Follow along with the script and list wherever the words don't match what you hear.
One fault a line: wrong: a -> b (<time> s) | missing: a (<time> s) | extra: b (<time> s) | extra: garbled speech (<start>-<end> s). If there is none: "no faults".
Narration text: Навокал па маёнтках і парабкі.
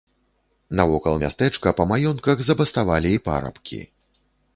extra: мястэчка (1.2 s)
extra: забаставалі (2.5 s)